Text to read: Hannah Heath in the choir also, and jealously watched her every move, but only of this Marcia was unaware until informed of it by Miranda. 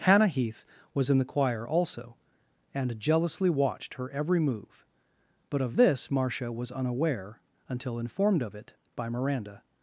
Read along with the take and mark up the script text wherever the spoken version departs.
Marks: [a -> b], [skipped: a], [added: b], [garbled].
Hannah Heath [added: was] in the choir also, and jealously watched her every move, but [skipped: only] of this Marcia was unaware until informed of it by Miranda.